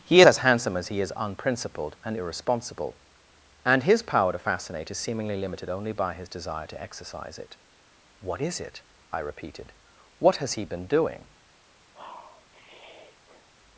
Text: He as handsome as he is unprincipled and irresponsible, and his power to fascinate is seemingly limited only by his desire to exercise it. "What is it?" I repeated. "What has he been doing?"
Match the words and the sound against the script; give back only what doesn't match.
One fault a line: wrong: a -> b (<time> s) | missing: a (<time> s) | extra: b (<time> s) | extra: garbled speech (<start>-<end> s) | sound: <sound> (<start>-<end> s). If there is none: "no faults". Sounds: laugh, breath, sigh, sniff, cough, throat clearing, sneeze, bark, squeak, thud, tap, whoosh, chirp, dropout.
sound: sniff (11.9-13.5 s)